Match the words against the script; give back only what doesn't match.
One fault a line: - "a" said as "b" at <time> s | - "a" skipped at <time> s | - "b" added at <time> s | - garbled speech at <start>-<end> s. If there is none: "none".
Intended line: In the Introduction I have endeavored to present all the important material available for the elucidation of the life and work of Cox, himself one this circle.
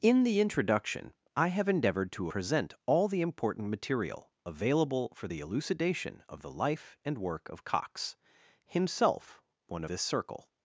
none